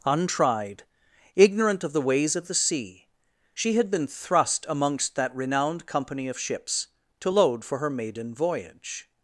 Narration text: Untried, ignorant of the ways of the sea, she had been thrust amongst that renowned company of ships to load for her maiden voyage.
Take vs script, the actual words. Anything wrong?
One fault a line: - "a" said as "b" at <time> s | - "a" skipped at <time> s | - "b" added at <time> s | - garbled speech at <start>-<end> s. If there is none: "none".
none